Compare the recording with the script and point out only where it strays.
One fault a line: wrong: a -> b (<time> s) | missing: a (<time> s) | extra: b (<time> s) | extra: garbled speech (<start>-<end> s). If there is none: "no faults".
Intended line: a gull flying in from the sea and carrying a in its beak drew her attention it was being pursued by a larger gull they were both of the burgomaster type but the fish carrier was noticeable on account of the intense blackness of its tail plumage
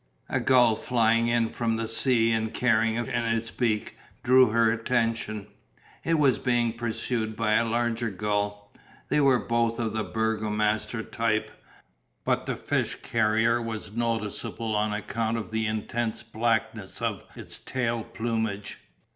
no faults